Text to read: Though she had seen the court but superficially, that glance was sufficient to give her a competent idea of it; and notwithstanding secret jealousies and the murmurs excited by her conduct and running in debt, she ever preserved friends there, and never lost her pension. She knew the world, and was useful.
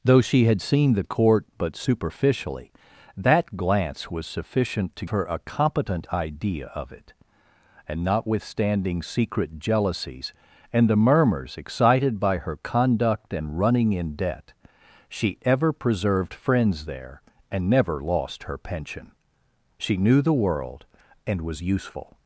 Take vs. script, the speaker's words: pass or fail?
fail